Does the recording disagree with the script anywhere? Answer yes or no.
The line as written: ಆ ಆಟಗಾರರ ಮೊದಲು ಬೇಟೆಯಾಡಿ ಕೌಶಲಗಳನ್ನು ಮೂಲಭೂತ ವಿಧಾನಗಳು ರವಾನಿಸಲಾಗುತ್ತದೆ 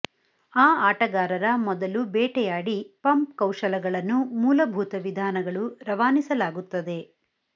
yes